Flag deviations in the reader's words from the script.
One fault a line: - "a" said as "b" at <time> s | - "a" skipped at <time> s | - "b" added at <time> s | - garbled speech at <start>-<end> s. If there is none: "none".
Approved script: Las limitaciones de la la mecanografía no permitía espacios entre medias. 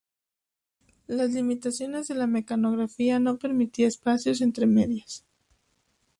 - "la" skipped at 2.2 s